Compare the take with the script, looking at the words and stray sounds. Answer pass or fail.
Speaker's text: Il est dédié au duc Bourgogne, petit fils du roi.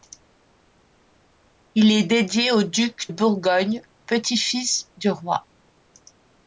pass